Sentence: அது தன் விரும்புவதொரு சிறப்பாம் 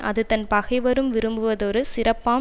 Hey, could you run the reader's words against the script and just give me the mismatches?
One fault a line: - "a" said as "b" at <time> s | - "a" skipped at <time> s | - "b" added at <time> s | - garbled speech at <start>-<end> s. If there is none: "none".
- "பகைவரும்" added at 0.5 s